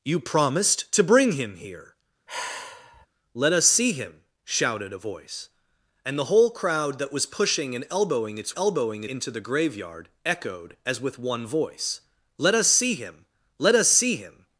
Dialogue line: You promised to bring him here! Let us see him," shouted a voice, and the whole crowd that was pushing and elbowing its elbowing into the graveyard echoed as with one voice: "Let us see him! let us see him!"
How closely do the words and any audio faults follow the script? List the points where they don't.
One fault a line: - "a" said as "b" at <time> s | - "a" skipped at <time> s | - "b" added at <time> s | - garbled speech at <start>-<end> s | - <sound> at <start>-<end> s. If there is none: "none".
- sigh at 2.3-3.1 s